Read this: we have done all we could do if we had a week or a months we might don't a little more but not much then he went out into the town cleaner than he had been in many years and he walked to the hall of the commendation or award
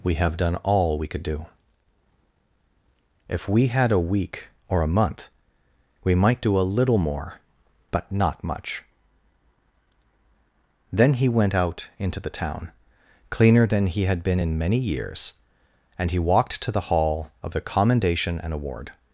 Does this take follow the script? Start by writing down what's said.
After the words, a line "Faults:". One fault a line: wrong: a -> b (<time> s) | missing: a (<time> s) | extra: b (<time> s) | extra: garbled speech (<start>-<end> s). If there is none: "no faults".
we have done all we could do if we had a week or a month we might do a little more but not much then he went out into the town cleaner than he had been in many years and he walked to the hall of the commendation and award
Faults:
wrong: months -> month (4.9 s)
wrong: don't -> do (6.4 s)
wrong: or -> and (18.4 s)